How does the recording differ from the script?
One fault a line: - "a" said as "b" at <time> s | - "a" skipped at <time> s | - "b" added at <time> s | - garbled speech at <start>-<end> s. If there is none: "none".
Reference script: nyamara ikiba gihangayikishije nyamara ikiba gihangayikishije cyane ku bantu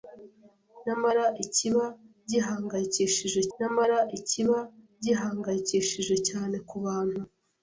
none